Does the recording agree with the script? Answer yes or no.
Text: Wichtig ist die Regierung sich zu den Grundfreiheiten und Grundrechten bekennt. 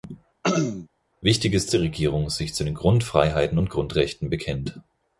yes